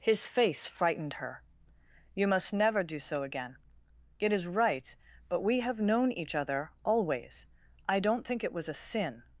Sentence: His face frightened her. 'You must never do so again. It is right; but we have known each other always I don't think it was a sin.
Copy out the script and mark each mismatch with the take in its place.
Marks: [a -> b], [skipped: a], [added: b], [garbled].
His face frightened her. 'You must never do so again. It is right; but we have known each other always I don't think it was a sin.